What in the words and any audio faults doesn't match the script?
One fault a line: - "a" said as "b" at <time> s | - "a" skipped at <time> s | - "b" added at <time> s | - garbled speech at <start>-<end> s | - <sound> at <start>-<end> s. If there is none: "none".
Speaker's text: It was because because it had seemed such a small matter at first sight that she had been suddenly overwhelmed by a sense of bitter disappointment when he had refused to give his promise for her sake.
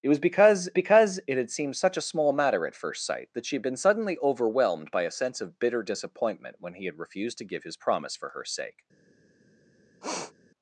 - sniff at 10.0-10.3 s